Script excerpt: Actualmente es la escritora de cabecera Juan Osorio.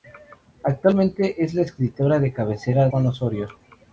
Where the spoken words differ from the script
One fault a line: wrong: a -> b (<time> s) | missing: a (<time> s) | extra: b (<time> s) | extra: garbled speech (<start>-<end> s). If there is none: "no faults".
no faults